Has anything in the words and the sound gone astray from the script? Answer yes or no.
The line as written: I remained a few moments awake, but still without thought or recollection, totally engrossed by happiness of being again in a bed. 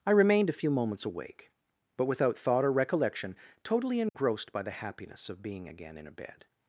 yes